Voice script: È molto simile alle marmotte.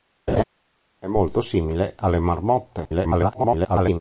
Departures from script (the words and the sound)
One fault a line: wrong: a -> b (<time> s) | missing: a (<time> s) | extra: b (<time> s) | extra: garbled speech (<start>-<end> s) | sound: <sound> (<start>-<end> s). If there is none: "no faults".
sound: laugh (0.3-0.4 s)
extra: garbled speech (2.8-4.0 s)